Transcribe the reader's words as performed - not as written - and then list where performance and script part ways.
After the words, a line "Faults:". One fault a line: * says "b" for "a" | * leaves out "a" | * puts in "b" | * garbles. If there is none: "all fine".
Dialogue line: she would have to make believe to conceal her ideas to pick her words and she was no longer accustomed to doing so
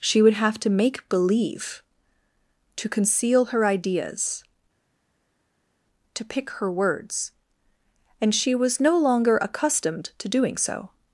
she would have to make believe to conceal her ideas to pick her words and she was no longer accustomed to doing so
Faults:
all fine